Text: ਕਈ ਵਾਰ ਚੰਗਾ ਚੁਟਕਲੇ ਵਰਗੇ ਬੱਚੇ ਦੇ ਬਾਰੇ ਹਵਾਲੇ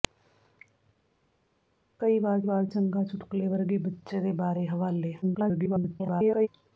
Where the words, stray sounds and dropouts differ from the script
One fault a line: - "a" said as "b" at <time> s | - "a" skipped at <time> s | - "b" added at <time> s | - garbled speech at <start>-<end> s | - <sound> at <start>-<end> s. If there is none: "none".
- "ਵਾਰ" added at 2.4 s
- garbled speech at 5.2-6.5 s